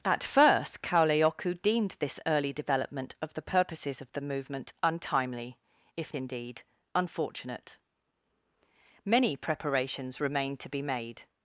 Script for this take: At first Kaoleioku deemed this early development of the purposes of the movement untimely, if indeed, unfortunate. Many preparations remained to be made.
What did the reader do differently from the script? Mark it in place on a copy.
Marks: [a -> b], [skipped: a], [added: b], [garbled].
At first Kaoleioku deemed this early development of the purposes of the movement untimely, if indeed, unfortunate. Many preparations remained to be made.